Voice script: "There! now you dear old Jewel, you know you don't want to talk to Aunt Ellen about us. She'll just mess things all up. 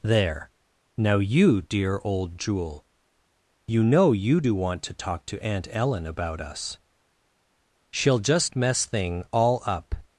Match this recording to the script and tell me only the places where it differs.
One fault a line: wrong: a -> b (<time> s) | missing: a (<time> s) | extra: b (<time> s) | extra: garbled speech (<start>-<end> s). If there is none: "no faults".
wrong: don't -> do (4.4 s)
wrong: things -> thing (8.8 s)